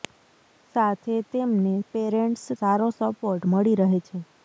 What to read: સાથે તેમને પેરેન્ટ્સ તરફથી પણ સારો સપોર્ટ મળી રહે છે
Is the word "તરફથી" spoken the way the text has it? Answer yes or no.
no